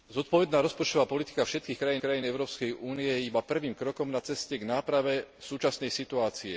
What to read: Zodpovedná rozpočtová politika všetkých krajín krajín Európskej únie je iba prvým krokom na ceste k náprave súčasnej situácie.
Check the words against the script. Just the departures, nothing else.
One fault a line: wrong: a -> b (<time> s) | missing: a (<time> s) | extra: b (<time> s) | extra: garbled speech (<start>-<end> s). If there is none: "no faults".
no faults